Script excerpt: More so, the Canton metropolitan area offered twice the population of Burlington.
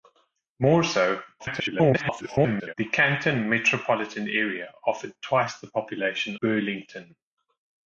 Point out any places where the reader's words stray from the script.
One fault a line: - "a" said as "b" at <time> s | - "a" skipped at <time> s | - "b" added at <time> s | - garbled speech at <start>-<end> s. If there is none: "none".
- garbled speech at 1.4-2.7 s
- "of" skipped at 6.4 s